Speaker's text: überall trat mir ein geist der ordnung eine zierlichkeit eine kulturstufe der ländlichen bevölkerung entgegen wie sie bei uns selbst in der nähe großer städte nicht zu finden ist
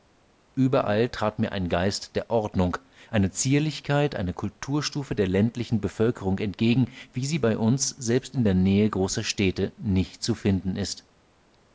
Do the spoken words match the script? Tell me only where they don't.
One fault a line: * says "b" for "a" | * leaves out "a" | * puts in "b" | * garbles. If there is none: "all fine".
all fine